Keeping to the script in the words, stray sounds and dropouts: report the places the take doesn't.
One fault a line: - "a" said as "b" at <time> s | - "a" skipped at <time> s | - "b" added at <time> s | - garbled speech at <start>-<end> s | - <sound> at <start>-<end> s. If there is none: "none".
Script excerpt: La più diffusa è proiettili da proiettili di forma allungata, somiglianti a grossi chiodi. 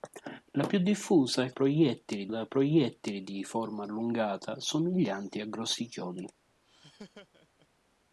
- laugh at 6.6-7.7 s